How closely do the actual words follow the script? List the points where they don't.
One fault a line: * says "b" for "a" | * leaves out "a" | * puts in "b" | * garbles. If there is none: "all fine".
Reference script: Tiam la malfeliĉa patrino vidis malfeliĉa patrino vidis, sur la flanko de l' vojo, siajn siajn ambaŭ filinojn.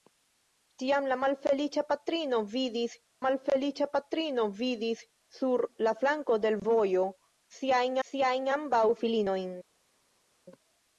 all fine